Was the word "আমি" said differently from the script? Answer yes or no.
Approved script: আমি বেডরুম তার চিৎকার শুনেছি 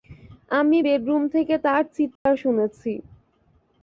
no